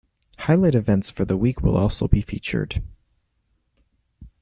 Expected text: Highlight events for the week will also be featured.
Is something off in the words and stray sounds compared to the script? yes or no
no